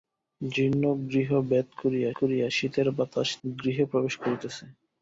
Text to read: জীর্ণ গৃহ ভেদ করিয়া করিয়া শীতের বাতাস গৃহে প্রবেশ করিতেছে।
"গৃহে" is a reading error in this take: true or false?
false